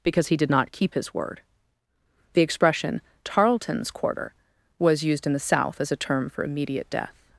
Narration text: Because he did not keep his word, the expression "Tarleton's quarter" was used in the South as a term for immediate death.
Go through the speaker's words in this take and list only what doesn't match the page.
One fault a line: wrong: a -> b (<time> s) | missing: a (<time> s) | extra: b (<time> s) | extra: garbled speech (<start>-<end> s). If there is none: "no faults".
no faults